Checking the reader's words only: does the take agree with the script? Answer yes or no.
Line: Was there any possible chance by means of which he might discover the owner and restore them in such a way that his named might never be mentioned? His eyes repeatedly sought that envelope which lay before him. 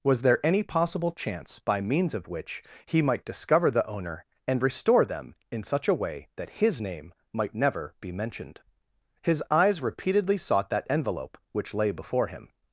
no